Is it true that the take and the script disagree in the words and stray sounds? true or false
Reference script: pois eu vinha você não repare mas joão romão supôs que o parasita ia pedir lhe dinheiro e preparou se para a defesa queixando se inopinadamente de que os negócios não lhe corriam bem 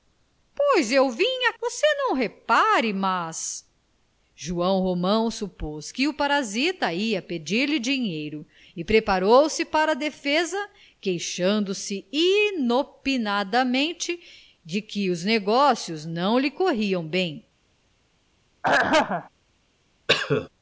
true